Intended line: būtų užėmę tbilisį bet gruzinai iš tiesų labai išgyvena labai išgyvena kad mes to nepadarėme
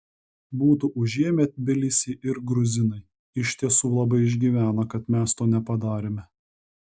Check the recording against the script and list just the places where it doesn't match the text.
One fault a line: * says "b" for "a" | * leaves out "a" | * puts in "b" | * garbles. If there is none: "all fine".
* says "ir" for "bet"
* leaves out "labai išgyvena"